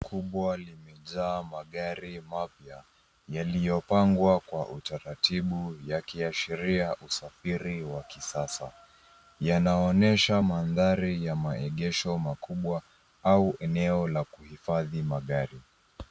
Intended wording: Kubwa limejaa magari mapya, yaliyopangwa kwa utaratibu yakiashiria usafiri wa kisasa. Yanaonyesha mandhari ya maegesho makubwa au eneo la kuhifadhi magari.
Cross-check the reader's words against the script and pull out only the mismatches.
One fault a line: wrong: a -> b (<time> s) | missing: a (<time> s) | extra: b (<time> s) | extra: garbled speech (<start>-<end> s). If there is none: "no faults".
no faults